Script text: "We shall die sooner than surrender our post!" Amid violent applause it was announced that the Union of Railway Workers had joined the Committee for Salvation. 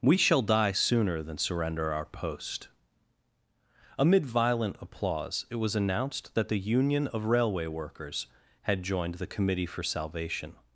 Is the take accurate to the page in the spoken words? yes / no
yes